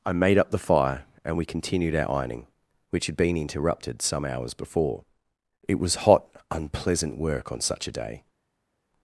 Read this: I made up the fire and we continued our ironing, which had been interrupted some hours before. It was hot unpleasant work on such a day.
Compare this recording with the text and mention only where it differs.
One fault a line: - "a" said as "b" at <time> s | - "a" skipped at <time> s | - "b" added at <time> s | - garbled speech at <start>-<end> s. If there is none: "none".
none